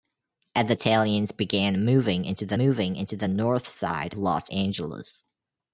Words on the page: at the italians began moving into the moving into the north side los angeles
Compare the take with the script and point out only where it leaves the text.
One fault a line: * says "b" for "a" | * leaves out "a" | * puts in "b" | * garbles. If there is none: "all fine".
all fine